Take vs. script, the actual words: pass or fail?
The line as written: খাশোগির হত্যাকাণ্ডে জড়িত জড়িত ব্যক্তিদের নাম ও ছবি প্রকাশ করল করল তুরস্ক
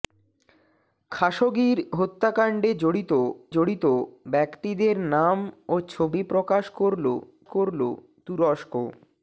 pass